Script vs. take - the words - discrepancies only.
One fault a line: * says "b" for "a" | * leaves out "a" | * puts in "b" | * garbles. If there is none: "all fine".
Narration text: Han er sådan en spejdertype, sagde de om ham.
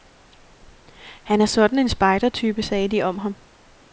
all fine